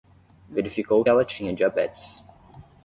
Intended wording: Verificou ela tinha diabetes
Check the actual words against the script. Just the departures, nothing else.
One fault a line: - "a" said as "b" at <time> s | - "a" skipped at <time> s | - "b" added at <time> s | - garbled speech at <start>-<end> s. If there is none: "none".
none